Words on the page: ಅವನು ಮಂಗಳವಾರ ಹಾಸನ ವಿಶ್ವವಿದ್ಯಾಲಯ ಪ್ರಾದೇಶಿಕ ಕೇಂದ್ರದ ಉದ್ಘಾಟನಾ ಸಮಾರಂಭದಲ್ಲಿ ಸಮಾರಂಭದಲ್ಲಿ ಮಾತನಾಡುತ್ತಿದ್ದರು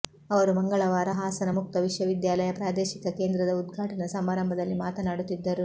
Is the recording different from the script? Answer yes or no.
yes